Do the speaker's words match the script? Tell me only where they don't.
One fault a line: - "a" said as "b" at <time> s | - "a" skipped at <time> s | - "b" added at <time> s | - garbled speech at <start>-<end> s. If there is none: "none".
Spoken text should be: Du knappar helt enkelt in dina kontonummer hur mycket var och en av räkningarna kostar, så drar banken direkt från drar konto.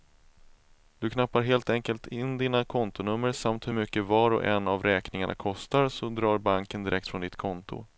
- "samt" added at 3.3 s
- "drar" said as "ditt" at 7.2 s